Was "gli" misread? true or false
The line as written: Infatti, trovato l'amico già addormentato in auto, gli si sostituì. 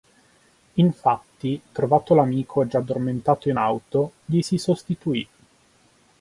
false